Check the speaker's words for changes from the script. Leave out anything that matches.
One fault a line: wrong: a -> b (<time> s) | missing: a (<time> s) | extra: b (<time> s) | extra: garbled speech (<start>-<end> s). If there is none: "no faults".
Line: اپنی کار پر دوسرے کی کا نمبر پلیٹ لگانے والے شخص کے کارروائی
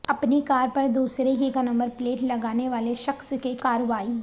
no faults